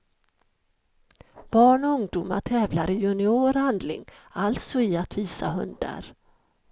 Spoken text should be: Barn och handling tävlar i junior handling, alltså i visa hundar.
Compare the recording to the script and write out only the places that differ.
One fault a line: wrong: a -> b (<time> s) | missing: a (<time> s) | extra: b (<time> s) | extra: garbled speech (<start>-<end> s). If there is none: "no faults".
wrong: handling -> ungdomar (1.9 s)
extra: att (5.0 s)